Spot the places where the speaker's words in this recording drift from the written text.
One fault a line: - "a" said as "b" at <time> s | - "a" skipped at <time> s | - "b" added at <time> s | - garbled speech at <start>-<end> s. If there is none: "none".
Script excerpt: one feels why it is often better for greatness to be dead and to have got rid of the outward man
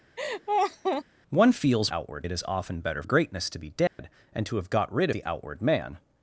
- "why" said as "outward" at 1.9 s
- "for" skipped at 3.0 s
- "of" skipped at 5.1 s